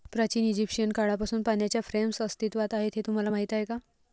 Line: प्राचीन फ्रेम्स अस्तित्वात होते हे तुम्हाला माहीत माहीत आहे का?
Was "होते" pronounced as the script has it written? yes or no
no